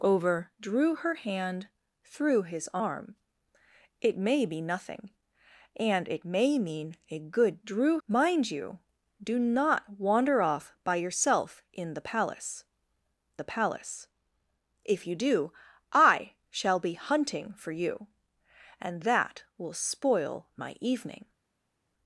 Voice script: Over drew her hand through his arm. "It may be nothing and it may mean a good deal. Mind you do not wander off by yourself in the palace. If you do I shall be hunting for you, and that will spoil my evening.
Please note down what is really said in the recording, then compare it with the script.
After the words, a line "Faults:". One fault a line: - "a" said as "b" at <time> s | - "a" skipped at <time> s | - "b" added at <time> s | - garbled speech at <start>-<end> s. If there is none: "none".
Over drew her hand through his arm. "It may be nothing and it may mean a good drew. Mind you do not wander off by yourself in the palace the palace. If you do I shall be hunting for you, and that will spoil my evening.
Faults:
- "deal" said as "drew" at 7.6 s
- "the palace" added at 13.4 s